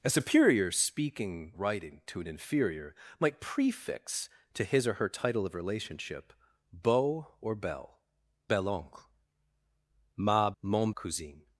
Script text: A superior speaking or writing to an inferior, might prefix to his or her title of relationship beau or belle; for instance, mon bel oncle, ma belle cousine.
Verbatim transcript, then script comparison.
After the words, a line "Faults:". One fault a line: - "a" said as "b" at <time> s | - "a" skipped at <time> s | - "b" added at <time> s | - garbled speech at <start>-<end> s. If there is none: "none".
A superior speaking writing to an inferior, might prefix to his or her title of relationship beau or belle; bel oncle, ma mon cousine.
Faults:
- "or" skipped at 1.5 s
- "for instance mon" skipped at 8.0 s
- "belle" said as "mon" at 10.6 s